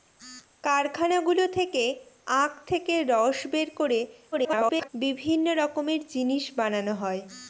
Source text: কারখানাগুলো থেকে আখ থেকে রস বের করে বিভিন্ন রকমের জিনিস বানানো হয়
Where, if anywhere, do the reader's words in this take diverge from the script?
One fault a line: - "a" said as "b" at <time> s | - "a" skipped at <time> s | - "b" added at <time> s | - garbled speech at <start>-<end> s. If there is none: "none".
- garbled speech at 4.3-4.9 s